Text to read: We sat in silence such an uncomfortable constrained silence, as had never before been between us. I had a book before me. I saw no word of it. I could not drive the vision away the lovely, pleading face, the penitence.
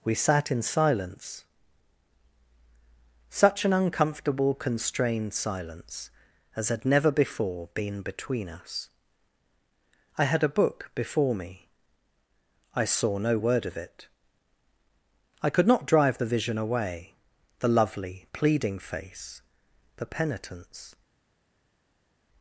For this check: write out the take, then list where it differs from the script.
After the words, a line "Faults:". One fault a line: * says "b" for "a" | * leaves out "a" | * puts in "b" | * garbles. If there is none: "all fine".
We sat in silence such an uncomfortable constrained silence, as had never before been between us. I had a book before me. I saw no word of it. I could not drive the vision away the lovely, pleading face, the penitence.
Faults:
all fine